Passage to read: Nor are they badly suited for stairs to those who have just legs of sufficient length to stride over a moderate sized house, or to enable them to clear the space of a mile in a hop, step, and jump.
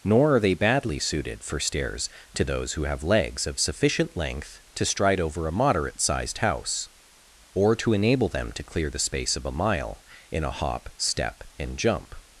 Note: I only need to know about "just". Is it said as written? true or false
false